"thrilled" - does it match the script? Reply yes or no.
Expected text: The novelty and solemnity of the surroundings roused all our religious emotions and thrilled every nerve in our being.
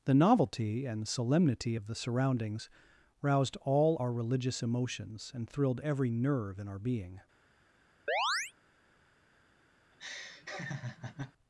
yes